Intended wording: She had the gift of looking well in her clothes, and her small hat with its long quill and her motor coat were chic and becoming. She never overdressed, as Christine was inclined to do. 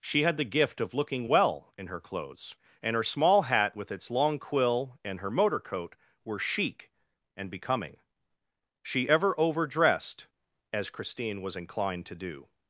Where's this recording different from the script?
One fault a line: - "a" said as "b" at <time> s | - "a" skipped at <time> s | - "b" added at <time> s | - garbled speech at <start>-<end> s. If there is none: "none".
- "never" said as "ever" at 9.1 s